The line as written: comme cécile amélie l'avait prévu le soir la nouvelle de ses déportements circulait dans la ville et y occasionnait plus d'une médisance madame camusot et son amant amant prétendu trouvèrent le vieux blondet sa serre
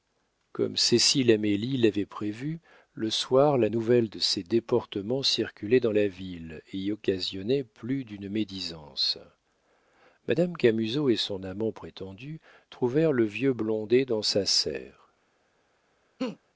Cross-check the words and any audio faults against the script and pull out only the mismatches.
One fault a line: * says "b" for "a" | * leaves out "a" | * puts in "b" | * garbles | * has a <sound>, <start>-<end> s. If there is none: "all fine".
* leaves out "amant"
* puts in "dans"
* has a laugh, 16.2-16.4 s